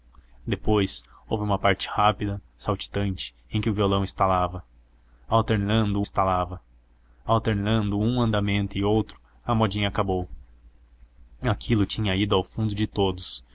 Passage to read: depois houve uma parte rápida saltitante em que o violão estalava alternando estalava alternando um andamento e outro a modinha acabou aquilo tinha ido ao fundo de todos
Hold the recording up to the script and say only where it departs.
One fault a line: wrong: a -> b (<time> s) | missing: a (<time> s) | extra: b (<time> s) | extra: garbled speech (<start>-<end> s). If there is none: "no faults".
no faults